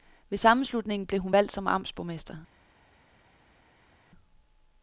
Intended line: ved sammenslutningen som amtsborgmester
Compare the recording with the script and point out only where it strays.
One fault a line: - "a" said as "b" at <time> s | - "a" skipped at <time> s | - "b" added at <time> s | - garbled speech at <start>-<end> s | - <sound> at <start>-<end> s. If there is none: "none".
- "blev hun valgt" added at 1.1 s